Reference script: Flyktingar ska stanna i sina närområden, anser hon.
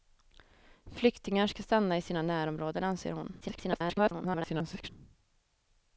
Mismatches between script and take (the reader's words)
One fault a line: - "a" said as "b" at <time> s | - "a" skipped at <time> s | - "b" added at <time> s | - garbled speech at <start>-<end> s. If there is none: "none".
- garbled speech at 3.4-4.9 s